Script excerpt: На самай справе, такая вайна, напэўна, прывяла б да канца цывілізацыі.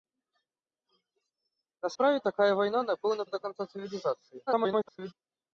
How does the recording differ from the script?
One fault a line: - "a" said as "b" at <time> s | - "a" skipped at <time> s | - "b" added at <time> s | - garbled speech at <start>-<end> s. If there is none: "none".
- "самай" skipped at 1.9 s
- "прывяла" skipped at 3.2 s
- garbled speech at 4.5-5.1 s